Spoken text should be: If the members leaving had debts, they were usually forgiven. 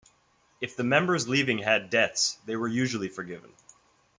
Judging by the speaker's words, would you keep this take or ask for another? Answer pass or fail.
pass